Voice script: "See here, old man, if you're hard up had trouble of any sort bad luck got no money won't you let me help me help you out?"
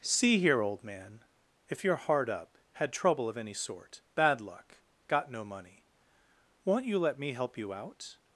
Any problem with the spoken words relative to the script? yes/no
yes